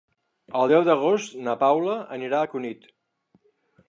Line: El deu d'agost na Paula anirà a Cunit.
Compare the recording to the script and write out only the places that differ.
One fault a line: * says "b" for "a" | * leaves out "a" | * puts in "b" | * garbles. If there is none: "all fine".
all fine